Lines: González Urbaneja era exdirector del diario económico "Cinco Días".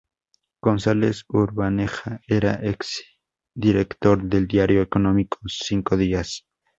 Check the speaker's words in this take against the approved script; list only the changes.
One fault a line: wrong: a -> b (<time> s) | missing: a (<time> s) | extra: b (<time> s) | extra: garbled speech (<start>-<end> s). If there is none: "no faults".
no faults